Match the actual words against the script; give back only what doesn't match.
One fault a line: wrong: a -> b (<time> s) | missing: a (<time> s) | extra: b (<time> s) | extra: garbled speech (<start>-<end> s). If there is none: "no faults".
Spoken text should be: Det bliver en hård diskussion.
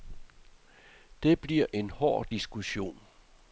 no faults